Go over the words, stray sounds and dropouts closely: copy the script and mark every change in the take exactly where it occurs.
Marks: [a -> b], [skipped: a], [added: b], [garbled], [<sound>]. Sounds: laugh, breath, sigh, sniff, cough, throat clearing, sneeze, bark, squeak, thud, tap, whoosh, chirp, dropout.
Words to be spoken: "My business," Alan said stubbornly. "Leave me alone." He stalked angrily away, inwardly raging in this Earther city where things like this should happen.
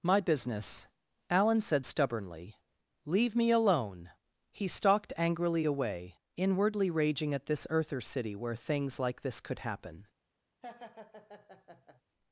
"My business," Alan said stubbornly. "Leave me alone." He stalked angrily away, inwardly raging [in -> at] this Earther city where things like this [should -> could] happen. [laugh]